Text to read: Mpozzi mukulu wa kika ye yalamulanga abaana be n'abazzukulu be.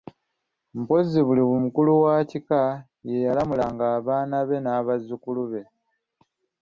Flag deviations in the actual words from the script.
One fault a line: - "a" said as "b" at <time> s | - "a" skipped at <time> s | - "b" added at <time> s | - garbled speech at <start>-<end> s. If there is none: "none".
- "buli" added at 1.3 s